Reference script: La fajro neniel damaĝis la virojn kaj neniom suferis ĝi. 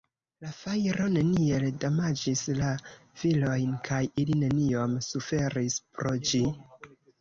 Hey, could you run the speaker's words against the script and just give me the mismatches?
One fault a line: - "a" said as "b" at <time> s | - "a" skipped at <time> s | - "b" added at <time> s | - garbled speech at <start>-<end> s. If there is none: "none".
- "ili" added at 4.3 s
- "pro" added at 6.0 s